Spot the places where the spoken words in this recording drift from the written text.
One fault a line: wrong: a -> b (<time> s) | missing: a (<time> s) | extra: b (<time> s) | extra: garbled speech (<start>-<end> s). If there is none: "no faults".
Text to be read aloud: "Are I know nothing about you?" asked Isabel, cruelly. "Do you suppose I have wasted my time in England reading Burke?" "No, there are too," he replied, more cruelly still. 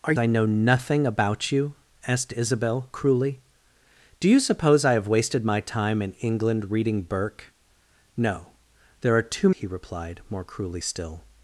no faults